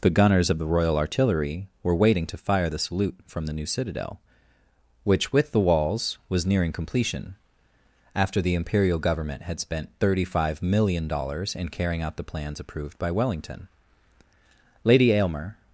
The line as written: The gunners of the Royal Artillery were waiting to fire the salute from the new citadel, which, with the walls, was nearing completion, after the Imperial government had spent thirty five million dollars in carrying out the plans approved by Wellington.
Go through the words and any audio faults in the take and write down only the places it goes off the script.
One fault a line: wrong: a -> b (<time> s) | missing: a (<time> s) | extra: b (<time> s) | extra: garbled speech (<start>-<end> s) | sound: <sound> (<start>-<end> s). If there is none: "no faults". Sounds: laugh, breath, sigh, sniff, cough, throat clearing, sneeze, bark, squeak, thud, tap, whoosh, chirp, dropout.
extra: Lady Aylmer (14.8 s)